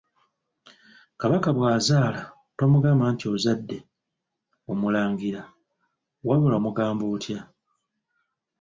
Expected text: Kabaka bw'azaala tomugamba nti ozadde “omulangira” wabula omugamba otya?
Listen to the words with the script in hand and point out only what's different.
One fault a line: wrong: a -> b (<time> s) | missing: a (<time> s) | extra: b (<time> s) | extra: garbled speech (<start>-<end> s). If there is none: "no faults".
no faults